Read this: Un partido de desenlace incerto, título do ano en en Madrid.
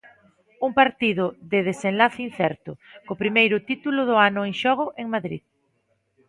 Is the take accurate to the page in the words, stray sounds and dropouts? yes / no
no